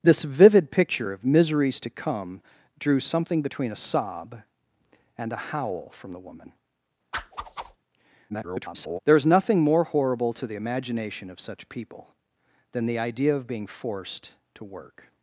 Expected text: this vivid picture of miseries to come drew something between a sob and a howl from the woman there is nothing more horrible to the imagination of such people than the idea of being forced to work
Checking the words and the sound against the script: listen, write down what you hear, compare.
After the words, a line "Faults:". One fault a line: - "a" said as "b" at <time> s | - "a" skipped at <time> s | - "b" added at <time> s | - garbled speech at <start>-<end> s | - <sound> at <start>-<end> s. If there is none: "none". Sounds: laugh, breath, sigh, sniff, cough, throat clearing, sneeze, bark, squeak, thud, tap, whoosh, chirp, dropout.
this vivid picture of miseries to come drew something between a sob and a howl from the woman [garbled] there is nothing more horrible to the imagination of such people than the idea of being forced to work
Faults:
- whoosh at 7.1-7.8 s
- garbled speech at 8.3-9.0 s